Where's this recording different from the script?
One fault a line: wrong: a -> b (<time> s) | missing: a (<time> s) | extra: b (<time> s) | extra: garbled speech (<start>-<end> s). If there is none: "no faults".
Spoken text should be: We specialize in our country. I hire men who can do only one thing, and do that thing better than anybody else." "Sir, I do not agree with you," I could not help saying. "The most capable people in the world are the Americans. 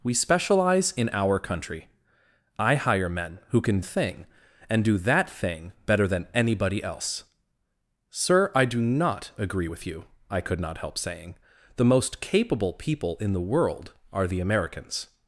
missing: do only one (3.8 s)